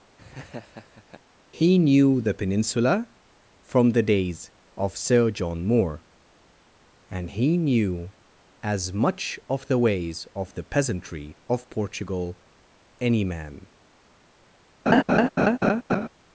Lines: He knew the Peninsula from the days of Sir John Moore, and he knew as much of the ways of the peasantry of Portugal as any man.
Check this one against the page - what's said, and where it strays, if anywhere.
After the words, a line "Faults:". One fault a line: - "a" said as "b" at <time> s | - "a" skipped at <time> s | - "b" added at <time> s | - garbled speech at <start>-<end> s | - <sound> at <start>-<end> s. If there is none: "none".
He knew the Peninsula from the days of Sir John Moore, and he knew as much of the ways of the peasantry of Portugal any man.
Faults:
- laugh at 0.2-1.2 s
- "as" skipped at 12.4 s
- laugh at 14.9-16.1 s